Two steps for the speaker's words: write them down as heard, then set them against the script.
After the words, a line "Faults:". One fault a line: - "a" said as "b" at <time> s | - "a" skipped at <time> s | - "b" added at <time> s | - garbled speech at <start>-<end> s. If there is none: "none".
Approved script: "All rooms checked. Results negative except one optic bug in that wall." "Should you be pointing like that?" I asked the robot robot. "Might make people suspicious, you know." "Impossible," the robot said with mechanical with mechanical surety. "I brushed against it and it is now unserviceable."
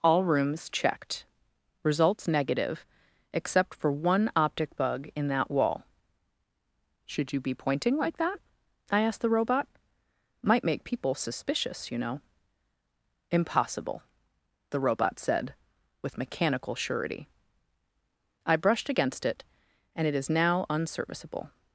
"All rooms checked. Results negative except for one optic bug in that wall." "Should you be pointing like that?" I asked the robot. "Might make people suspicious, you know." "Impossible," the robot said with mechanical surety. "I brushed against it and it is now unserviceable."
Faults:
- "for" added at 3.7 s
- "robot" skipped at 9.7 s
- "with mechanical" skipped at 16.7 s